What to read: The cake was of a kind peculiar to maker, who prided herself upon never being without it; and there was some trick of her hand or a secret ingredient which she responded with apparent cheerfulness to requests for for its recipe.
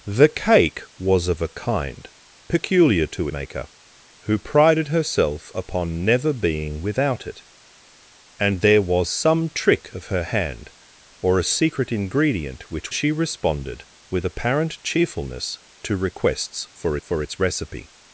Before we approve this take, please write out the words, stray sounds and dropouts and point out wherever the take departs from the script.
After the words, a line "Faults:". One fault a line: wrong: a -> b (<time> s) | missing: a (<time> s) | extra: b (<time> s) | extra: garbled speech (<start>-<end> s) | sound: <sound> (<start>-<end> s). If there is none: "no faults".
The cake was of a kind peculiar to maker, who prided herself upon never being without it; and there was some trick of her hand or a secret ingredient which she responded with apparent cheerfulness to requests for for its recipe.
Faults:
no faults